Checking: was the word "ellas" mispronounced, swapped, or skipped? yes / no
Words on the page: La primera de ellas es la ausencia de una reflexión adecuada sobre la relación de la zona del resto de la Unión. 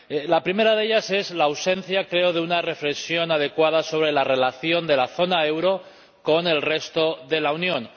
no